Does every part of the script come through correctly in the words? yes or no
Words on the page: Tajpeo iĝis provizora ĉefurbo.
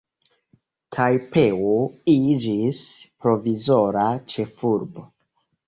yes